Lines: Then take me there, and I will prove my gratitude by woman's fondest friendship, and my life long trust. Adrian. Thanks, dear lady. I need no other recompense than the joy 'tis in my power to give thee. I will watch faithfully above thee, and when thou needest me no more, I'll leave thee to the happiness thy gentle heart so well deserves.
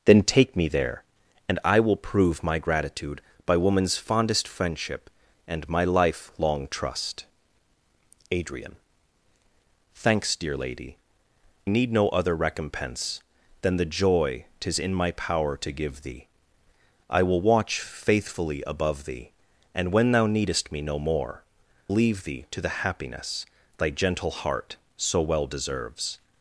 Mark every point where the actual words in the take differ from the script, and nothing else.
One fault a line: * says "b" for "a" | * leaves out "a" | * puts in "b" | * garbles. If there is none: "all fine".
* leaves out "I"
* leaves out "I'll"